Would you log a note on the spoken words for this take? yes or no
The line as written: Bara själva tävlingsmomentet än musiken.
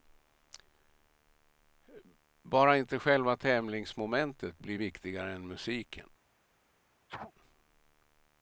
yes